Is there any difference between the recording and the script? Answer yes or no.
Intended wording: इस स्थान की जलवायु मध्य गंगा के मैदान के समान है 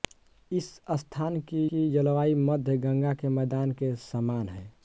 yes